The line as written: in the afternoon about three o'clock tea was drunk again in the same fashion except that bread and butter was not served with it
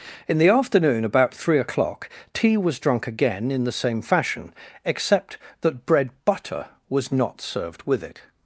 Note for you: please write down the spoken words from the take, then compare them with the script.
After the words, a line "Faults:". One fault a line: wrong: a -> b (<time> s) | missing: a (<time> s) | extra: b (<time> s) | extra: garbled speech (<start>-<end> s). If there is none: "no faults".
in the afternoon about three o'clock tea was drunk again in the same fashion except that bread butter was not served with it
Faults:
missing: and (6.1 s)